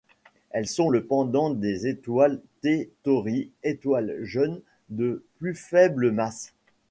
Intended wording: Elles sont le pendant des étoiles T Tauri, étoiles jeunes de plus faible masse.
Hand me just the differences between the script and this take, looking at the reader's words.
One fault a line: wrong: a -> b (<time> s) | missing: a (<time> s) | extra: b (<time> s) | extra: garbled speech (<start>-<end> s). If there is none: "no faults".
no faults